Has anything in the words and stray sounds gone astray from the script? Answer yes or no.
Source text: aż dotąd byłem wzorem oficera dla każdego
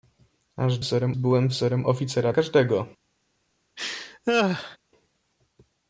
yes